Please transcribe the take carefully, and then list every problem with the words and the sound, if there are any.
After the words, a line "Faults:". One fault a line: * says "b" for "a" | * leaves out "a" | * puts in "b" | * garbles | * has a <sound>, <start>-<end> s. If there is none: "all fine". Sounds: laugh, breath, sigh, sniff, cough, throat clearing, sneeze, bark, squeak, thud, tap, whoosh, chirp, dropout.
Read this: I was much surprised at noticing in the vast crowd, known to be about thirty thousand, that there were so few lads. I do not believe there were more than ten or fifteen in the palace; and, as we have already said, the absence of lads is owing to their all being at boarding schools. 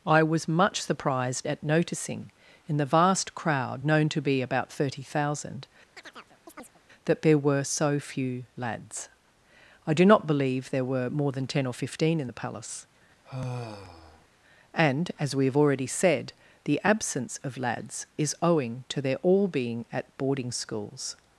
I was much surprised at noticing in the vast crowd, known to be about thirty thousand, that there were so few lads. I do not believe there were more than ten or fifteen in the palace; and, as we have already said, the absence of lads is owing to their all being at boarding schools.
Faults:
* has a chirp, 6.0-6.8 s
* has a sigh, 13.2-14.3 s